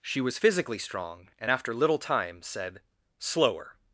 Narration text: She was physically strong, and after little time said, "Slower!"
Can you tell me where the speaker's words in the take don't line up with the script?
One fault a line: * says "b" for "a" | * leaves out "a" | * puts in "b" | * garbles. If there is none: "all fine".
all fine